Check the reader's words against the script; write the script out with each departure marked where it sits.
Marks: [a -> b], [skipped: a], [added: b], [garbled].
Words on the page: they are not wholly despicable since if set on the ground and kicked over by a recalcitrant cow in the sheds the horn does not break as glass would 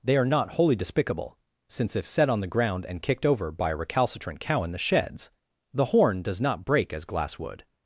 they are not wholly despicable since if set on the ground and kicked over by a recalcitrant cow in the sheds the horn does not break as glass would